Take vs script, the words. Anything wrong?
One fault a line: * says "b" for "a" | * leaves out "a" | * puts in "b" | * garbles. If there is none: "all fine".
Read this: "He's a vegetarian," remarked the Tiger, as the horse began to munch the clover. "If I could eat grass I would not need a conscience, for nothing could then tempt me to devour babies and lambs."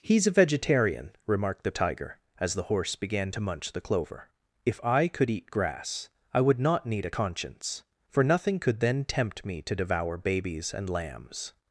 all fine